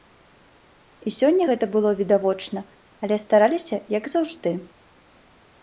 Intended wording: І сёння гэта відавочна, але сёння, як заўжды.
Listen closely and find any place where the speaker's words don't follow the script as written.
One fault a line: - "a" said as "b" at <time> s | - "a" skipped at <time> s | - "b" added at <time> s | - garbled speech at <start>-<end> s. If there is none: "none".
- "было" added at 1.8 s
- "сёння" said as "стараліся" at 3.3 s